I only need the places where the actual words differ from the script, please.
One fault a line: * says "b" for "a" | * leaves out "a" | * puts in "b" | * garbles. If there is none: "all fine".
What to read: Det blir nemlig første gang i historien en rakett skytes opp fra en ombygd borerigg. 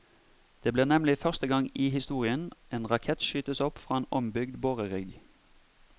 all fine